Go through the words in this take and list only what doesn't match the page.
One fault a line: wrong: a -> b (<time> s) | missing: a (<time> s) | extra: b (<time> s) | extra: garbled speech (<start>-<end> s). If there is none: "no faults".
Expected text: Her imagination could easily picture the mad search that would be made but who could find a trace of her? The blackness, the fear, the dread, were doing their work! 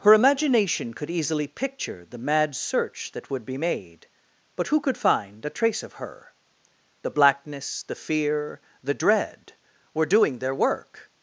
no faults